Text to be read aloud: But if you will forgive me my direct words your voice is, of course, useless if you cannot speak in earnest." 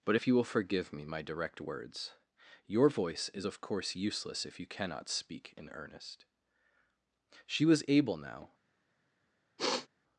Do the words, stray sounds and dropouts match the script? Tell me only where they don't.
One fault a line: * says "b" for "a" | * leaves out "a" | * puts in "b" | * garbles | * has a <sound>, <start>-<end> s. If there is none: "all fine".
* puts in "She was able now"
* has a sniff, 9.6-9.9 s